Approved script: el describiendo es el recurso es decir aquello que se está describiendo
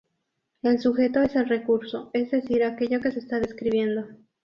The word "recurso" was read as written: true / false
true